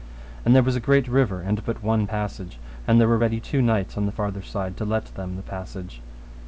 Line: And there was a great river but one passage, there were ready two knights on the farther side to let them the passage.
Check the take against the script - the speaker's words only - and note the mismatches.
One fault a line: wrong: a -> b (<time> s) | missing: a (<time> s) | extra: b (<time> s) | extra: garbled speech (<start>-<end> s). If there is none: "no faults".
extra: and (1.4 s)
extra: and (2.9 s)